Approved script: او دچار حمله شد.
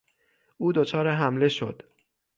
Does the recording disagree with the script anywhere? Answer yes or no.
no